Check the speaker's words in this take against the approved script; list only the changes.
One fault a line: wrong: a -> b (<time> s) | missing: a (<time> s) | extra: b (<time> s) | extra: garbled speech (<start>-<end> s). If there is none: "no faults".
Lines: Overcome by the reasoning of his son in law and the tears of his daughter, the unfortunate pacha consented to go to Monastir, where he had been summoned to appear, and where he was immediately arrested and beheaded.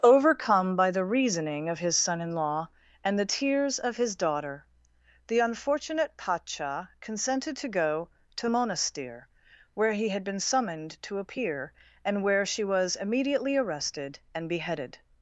wrong: he -> she (12.4 s)